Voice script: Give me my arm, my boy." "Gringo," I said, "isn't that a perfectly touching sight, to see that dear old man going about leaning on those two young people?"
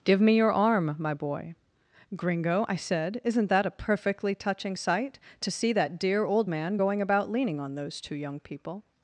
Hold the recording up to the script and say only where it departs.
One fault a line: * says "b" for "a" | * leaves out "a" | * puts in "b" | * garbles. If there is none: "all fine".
* says "your" for "my"